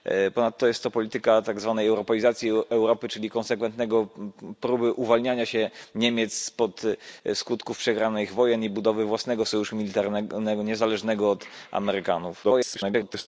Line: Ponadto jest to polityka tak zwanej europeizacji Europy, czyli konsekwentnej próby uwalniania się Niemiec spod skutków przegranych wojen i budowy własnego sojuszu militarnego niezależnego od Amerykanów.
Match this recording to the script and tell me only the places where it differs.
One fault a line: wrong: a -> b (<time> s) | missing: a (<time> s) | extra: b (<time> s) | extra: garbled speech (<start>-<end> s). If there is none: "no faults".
extra: garbled speech (12.4-13.3 s)